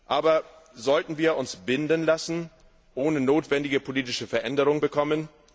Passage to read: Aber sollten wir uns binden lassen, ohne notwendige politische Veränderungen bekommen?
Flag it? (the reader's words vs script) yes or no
no